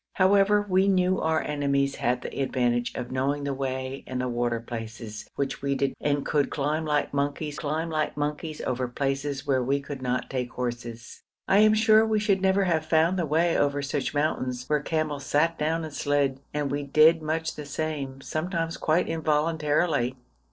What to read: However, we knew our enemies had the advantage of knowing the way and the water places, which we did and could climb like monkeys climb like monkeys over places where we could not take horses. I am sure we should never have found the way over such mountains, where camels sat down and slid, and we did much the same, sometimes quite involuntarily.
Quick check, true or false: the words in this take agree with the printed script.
true